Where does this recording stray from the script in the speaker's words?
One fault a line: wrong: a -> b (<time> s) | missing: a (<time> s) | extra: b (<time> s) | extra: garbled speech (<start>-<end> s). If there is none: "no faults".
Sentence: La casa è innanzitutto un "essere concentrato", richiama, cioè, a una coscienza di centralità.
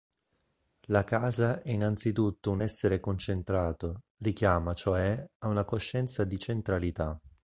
no faults